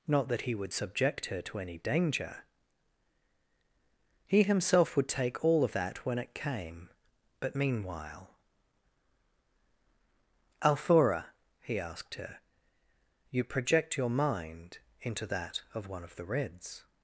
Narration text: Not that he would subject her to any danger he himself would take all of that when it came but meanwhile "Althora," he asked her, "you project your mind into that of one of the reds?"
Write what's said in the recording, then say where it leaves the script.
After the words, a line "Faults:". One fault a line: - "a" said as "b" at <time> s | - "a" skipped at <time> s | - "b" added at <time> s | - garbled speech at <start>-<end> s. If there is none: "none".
Not that he would subject her to any danger he himself would take all of that when it came but meanwhile "Althora," he asked her, "you project your mind into that of one of the reds?"
Faults:
none